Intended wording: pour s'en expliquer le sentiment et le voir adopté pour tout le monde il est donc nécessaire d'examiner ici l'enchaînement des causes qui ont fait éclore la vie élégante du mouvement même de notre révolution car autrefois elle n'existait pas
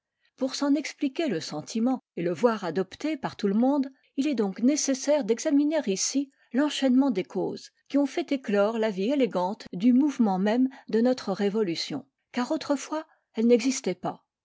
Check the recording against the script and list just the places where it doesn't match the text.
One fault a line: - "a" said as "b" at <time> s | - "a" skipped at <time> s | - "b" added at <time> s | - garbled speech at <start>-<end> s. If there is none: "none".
- "pour" said as "par" at 3.2 s